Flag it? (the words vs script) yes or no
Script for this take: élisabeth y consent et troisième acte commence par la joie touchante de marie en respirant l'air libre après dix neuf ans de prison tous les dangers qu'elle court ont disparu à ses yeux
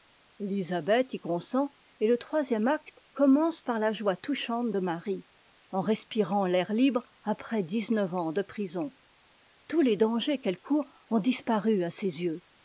yes